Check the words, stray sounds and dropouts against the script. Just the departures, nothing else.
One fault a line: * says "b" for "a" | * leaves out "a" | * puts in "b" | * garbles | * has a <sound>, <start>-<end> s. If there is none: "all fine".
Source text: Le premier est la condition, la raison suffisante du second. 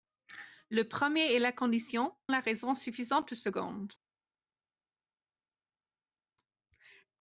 all fine